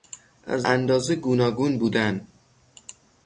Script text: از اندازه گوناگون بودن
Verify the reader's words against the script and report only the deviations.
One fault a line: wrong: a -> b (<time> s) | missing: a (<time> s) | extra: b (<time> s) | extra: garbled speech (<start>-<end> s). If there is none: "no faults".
no faults